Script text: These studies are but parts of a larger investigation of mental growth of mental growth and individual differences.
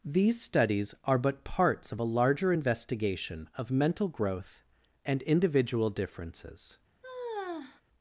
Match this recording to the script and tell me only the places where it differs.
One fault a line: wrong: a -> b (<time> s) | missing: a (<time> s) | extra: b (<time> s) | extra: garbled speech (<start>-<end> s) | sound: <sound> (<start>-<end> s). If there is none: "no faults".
missing: of mental growth (4.6 s)
sound: sigh (7.0-7.8 s)